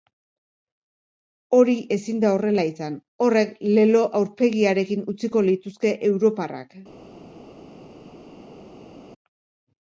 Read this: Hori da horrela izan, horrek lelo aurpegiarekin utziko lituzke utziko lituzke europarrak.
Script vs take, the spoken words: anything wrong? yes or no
yes